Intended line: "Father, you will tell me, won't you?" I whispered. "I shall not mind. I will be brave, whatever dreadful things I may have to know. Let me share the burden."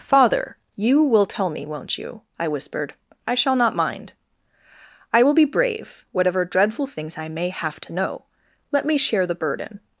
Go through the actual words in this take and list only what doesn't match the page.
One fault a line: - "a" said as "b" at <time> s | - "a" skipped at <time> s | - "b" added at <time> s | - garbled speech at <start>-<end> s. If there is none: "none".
none